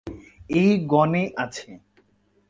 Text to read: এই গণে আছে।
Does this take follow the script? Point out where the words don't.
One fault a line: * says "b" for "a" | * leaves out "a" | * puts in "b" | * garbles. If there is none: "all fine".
all fine